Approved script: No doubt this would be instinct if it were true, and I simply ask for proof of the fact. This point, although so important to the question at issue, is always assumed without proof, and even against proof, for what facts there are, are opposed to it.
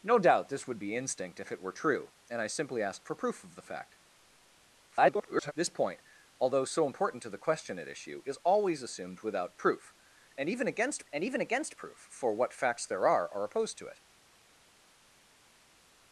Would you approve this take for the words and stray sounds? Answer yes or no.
no